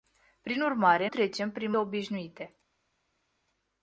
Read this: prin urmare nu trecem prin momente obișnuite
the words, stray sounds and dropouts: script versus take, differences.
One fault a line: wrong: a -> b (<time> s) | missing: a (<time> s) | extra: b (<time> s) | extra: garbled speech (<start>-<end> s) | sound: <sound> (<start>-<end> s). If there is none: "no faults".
missing: nu (1.1 s)
missing: momente (1.7 s)